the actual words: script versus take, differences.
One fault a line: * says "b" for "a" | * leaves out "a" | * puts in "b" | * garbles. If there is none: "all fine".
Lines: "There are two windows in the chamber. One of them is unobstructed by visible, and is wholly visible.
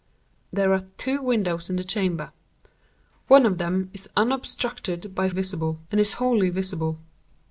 all fine